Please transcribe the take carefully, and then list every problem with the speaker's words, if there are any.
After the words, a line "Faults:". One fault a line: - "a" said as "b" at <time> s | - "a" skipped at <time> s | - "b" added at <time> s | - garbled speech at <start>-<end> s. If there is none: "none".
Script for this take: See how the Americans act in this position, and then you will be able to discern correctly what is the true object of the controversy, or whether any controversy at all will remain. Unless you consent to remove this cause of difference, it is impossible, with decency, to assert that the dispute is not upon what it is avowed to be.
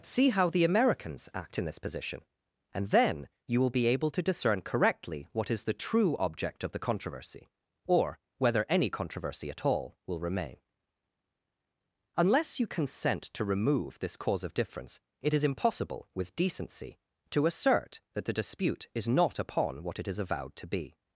See how the Americans act in this position, and then you will be able to discern correctly what is the true object of the controversy, or whether any controversy at all will remain. Unless you consent to remove this cause of difference, it is impossible, with decency, to assert that the dispute is not upon what it is avowed to be.
Faults:
none